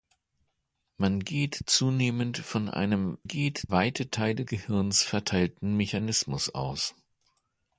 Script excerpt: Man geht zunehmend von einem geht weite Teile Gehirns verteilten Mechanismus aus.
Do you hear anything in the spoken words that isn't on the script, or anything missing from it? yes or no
no